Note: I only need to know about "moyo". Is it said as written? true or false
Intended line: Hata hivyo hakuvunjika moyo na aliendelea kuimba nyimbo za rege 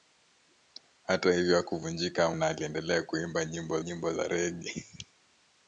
false